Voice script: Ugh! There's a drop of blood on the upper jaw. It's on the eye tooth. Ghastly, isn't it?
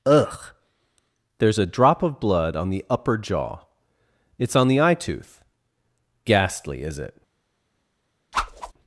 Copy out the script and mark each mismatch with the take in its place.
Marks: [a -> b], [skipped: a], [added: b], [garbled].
Ugh! There's a drop of blood on the upper jaw. It's on the eye tooth. Ghastly, [isn't -> is] it?